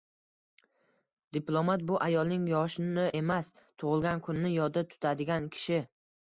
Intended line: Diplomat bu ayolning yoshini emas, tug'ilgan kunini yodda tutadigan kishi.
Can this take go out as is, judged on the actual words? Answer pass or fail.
pass